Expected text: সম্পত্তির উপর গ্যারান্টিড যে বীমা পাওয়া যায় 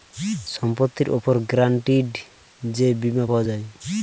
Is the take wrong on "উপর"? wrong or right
right